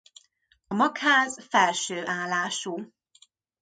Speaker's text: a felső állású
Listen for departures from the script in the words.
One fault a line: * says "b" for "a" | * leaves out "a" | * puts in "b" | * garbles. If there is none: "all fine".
* puts in "magház"